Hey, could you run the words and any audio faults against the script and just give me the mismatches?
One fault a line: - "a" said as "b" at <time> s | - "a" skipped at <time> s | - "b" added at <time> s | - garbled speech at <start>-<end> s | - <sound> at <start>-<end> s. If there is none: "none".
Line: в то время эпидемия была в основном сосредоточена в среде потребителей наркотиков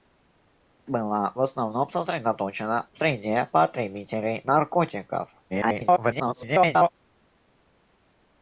- "то время эпидемия" skipped at 0.8 s
- garbled speech at 5.5-6.9 s